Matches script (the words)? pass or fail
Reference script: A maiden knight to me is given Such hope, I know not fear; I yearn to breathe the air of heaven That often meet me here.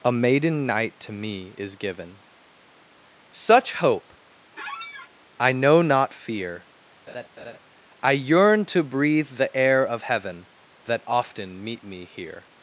pass